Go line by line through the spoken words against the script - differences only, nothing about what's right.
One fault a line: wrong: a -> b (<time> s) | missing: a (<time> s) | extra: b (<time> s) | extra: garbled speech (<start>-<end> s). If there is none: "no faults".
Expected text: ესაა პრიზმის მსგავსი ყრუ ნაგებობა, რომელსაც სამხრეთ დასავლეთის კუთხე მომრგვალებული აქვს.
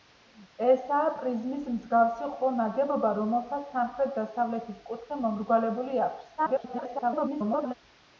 extra: garbled speech (6.4-7.7 s)